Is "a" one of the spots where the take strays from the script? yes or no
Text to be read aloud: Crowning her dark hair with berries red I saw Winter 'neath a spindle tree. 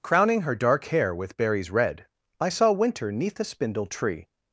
yes